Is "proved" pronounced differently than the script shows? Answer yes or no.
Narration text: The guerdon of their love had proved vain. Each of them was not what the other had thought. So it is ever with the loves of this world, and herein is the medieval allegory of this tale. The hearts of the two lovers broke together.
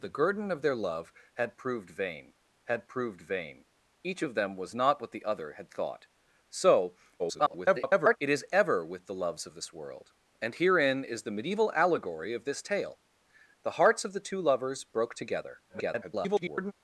no